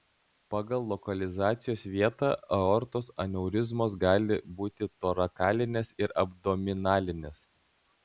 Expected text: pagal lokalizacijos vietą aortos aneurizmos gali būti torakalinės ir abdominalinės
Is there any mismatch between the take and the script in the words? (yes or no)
no